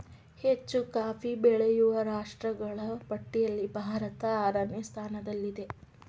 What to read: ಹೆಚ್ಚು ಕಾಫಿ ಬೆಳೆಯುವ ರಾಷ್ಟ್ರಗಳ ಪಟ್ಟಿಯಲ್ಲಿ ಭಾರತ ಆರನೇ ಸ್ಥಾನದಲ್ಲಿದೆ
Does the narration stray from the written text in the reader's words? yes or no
no